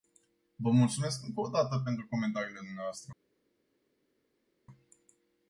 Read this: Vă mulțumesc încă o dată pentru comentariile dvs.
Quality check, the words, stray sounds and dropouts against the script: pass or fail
pass